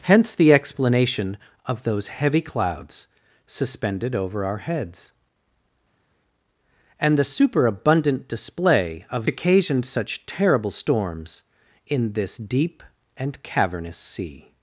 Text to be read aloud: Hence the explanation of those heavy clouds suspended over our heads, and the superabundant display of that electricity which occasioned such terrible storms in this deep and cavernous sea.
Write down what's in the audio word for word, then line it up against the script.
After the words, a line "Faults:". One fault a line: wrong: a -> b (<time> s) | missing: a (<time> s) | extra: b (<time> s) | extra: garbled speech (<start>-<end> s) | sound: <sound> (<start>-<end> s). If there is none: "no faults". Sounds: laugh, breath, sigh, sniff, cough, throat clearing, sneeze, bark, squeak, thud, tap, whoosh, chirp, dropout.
Hence the explanation of those heavy clouds suspended over our heads, and the superabundant display of occasioned such terrible storms in this deep and cavernous sea.
Faults:
missing: that electricity which (9.3 s)